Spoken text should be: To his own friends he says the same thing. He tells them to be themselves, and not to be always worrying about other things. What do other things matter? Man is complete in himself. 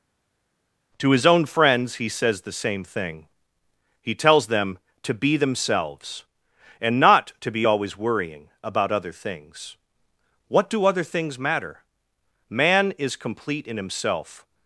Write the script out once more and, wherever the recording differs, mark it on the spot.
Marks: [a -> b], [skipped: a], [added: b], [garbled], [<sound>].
To his own friends he says the same thing. He tells them to be themselves, and not to be always worrying about other things. What do other things matter? Man is complete in himself.